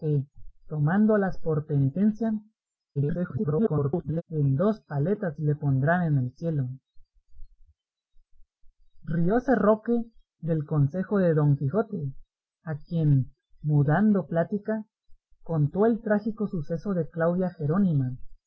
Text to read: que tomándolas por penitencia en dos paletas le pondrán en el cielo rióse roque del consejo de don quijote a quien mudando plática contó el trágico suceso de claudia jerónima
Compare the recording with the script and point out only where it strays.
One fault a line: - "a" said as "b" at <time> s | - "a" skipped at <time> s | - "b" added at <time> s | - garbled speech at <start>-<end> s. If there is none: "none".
- garbled speech at 3.0-4.2 s